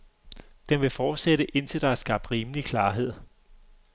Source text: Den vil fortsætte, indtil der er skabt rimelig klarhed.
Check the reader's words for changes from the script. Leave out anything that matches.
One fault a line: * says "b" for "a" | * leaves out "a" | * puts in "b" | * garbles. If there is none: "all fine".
all fine